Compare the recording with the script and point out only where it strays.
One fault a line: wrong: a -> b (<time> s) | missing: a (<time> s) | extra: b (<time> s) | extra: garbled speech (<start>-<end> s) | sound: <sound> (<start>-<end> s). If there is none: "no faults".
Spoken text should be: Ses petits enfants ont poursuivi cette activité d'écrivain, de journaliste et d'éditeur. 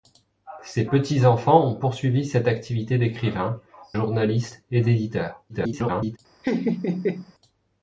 missing: de (3.6 s)
extra: garbled speech (5.5-6.2 s)
sound: laugh (6.4-7.3 s)